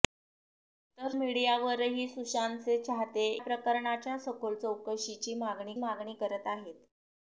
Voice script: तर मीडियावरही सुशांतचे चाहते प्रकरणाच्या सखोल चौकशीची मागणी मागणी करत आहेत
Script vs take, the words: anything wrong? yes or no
no